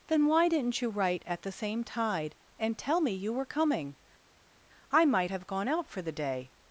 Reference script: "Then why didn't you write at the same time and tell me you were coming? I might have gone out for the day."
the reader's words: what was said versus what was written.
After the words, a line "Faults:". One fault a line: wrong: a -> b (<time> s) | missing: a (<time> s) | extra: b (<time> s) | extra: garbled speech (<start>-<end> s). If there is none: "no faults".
"Then why didn't you write at the same tide and tell me you were coming? I might have gone out for the day."
Faults:
wrong: time -> tide (1.8 s)